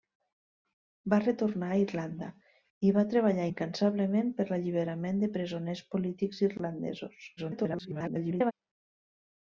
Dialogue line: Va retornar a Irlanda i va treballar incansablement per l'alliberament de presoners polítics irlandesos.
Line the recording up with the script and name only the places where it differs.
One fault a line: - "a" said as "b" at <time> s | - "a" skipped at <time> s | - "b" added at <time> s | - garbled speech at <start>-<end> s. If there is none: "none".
- garbled speech at 7.4-8.5 s